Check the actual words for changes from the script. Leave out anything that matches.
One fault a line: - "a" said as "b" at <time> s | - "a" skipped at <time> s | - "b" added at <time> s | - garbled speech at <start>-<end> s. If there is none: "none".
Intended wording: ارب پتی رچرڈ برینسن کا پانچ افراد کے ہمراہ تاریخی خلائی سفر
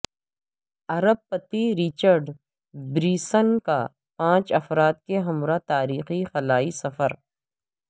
none